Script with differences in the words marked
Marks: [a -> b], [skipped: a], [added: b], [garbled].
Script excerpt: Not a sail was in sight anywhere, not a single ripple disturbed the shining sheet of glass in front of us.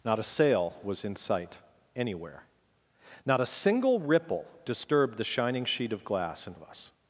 Not a sail was in sight anywhere, not a single ripple disturbed the shining sheet of glass in [skipped: front] of us.